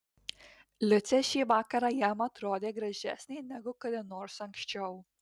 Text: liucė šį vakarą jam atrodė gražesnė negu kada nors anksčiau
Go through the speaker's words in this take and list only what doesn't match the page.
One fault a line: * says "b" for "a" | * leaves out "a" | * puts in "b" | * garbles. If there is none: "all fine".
all fine